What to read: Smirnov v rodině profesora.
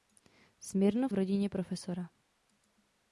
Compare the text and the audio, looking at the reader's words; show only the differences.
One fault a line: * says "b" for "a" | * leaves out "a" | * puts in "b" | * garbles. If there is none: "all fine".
all fine